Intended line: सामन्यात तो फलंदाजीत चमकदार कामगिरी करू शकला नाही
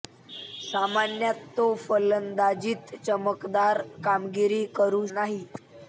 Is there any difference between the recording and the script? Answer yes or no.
yes